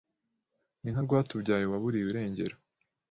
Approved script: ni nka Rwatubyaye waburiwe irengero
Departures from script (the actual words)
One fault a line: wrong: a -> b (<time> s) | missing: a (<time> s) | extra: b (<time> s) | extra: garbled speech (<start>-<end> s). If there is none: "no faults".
no faults